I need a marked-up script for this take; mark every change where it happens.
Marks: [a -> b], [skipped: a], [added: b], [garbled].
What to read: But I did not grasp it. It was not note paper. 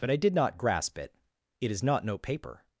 But I did not grasp it. It [was -> is] not note paper.